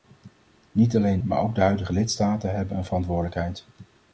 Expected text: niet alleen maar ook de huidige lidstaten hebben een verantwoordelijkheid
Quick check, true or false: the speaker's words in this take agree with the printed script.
true